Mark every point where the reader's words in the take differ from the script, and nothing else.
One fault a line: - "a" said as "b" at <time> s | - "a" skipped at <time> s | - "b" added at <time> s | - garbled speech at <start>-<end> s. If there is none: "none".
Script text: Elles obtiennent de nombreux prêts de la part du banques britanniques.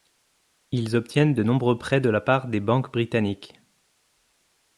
- "Elles" said as "Ils" at 0.7 s
- "du" said as "des" at 2.5 s